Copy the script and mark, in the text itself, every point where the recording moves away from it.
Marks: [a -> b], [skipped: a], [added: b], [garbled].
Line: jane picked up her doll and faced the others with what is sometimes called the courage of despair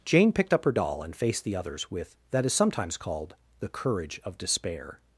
jane picked up her doll and faced the others with [what -> that] is sometimes called the courage of despair